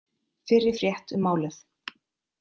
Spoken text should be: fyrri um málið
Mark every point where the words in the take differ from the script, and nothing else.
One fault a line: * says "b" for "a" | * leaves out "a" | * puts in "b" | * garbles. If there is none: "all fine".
* puts in "frétt"